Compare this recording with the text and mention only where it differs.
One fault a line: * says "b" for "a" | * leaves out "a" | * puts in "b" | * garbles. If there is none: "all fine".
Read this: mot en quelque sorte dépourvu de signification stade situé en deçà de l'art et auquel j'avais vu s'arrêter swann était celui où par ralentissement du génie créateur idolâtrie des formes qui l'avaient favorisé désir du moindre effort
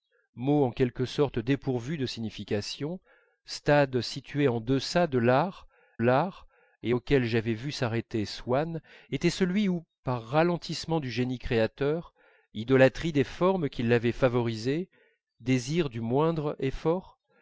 * puts in "l'art"